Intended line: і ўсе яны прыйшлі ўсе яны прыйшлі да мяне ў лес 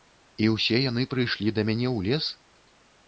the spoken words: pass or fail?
fail